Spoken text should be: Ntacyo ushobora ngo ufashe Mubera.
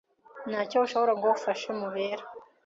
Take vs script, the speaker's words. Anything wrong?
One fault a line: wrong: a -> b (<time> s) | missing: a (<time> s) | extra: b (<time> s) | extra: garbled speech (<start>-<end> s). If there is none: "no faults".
no faults